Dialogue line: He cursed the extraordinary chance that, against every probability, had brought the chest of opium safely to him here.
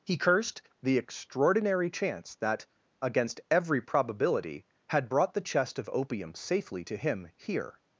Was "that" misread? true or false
false